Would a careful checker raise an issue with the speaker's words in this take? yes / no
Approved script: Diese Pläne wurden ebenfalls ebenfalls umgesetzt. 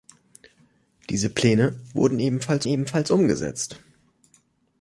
no